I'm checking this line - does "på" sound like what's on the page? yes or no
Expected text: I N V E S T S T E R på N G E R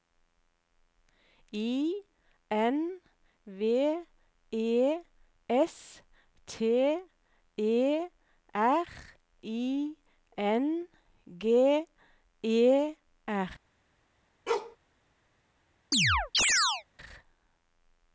no